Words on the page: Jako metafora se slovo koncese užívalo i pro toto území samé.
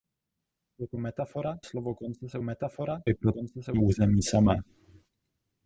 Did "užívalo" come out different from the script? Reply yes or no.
yes